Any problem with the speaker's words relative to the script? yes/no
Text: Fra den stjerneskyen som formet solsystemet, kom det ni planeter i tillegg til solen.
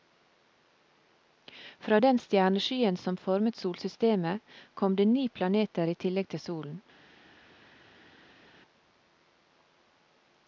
no